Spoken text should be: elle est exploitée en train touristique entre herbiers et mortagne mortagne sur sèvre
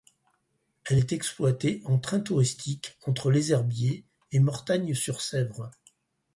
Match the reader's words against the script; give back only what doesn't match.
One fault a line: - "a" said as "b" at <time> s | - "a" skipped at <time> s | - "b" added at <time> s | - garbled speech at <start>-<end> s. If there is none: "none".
- "les" added at 3.3 s
- "mortagne" skipped at 4.9 s